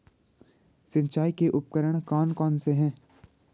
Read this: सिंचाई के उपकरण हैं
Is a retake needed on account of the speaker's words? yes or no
yes